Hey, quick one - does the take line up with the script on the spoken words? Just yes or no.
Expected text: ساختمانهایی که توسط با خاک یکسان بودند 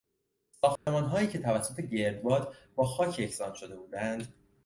no